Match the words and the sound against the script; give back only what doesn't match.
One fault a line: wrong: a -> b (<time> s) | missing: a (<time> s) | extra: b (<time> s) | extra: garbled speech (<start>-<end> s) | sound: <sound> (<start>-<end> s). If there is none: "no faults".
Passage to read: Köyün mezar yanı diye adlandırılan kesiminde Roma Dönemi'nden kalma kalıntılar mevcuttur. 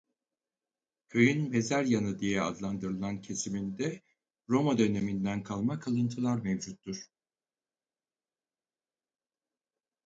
no faults